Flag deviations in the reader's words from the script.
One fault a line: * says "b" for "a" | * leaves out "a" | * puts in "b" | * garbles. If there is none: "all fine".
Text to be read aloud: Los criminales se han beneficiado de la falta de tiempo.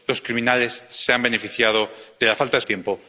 all fine